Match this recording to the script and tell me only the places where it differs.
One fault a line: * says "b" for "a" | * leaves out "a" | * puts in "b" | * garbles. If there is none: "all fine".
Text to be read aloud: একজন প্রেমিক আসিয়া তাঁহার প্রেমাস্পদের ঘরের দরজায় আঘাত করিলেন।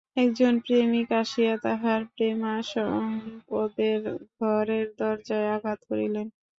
all fine